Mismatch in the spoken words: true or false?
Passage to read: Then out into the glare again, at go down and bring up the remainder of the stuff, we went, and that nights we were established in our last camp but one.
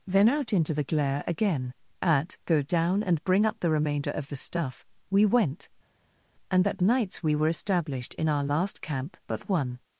false